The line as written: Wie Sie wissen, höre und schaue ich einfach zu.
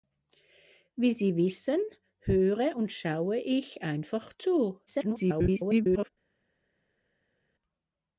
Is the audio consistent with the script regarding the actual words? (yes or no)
no